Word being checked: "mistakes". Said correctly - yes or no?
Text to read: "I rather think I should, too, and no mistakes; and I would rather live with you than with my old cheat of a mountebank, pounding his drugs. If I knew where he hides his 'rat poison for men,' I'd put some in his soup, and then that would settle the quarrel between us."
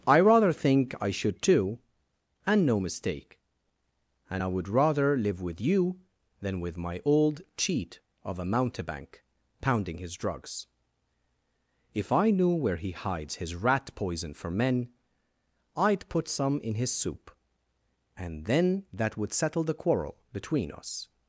no